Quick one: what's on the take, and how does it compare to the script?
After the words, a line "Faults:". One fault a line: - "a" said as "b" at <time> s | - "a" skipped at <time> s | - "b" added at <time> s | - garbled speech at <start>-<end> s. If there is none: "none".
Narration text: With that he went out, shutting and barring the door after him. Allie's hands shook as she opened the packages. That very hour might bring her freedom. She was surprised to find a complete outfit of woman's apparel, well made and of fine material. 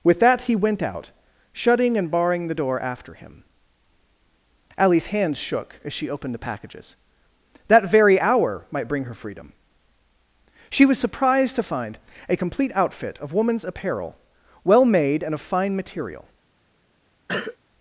With that he went out, shutting and barring the door after him. Allie's hands shook as she opened the packages. That very hour might bring her freedom. She was surprised to find a complete outfit of woman's apparel, well made and of fine material.
Faults:
none